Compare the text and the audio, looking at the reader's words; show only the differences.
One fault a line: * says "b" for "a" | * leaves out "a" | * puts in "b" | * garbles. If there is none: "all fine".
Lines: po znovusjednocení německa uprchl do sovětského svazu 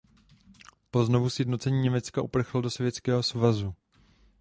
all fine